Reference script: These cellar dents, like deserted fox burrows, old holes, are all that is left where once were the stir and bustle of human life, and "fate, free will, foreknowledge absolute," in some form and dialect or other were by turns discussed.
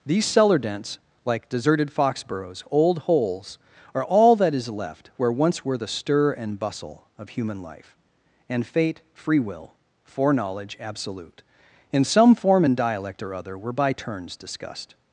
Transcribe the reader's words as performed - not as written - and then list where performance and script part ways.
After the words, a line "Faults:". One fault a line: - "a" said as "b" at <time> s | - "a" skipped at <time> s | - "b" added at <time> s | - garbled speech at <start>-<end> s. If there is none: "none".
These cellar dents, like deserted fox burrows, old holes, are all that is left where once were the stir and bustle of human life, and "fate, free will, foreknowledge absolute," in some form and dialect or other were by turns discussed.
Faults:
none